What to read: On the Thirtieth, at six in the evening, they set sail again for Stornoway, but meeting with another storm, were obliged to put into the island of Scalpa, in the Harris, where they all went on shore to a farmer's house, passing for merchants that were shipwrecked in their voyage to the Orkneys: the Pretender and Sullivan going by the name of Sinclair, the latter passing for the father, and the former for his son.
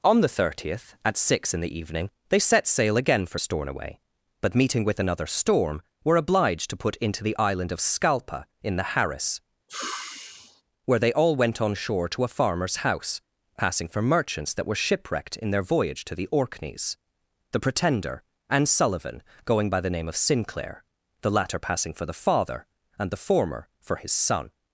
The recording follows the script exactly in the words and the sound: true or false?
false